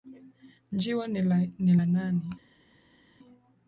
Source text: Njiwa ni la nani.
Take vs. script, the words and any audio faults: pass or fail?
pass